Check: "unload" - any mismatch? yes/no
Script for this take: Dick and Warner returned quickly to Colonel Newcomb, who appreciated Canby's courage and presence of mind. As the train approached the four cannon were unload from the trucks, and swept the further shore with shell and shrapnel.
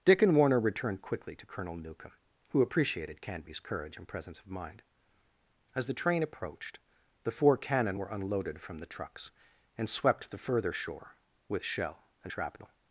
yes